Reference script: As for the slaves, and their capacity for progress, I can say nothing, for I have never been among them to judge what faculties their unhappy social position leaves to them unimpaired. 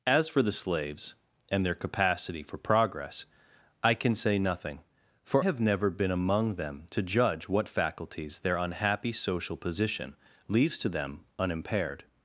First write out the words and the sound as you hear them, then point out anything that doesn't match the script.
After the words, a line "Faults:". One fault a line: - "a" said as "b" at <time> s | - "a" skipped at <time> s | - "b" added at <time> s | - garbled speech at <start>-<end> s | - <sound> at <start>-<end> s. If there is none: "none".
As for the slaves, and their capacity for progress, I can say nothing, for have never been among them to judge what faculties their unhappy social position leaves to them unimpaired.
Faults:
- "I" skipped at 5.5 s